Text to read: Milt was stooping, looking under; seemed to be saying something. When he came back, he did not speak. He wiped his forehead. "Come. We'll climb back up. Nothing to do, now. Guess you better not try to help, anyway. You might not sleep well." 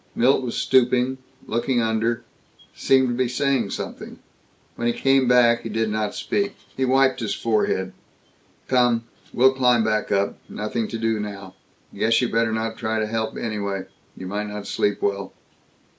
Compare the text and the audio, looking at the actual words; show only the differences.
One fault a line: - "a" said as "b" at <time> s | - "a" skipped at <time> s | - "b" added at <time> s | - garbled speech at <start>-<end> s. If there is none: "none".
none